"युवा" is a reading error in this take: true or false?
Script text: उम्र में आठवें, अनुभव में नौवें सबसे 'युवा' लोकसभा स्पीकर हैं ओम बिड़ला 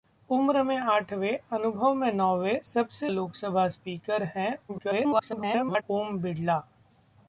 true